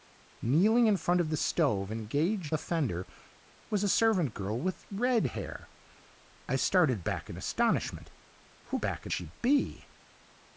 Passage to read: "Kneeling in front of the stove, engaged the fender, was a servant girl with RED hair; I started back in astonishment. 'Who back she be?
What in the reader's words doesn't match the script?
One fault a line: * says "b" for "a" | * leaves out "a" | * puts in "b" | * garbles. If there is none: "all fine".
all fine